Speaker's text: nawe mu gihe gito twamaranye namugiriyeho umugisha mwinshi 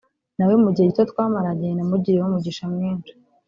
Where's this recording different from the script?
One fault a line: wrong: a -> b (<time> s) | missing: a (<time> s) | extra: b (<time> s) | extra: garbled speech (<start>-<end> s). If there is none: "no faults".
no faults